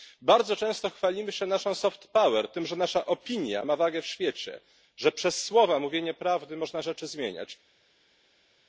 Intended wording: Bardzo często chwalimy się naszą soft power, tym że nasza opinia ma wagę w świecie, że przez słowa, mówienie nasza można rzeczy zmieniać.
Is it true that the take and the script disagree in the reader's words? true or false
true